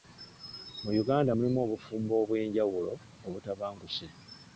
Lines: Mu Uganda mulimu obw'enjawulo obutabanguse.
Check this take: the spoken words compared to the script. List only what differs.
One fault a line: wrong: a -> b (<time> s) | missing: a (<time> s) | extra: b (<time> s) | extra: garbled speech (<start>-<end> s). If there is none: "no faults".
extra: obufumbo (1.6 s)